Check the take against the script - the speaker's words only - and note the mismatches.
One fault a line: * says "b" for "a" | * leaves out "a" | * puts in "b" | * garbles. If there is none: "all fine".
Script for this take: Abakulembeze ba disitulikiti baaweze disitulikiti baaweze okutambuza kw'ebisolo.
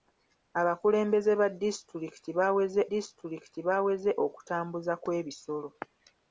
all fine